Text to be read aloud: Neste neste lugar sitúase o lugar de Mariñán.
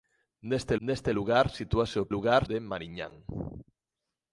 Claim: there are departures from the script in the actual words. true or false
false